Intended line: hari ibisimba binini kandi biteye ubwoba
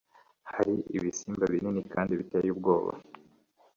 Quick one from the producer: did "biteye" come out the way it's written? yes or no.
yes